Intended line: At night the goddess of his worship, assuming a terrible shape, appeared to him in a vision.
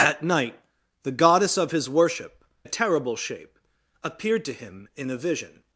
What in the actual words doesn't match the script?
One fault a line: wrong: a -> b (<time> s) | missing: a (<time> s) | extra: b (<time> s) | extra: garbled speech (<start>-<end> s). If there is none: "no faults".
missing: assuming (2.4 s)